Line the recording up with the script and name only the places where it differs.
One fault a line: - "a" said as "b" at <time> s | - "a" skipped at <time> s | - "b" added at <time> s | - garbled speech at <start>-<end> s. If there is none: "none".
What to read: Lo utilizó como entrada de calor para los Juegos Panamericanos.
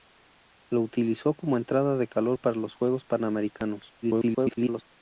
- garbled speech at 4.0-4.8 s